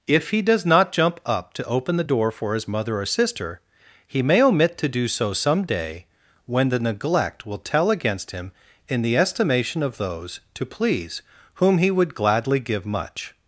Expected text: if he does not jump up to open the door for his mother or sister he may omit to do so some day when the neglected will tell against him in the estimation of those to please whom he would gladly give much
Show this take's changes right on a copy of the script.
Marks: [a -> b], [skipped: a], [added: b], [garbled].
if he does not jump up to open the door for his mother or sister he may omit to do so some day when the [neglected -> neglect] will tell against him in the estimation of those to please whom he would gladly give much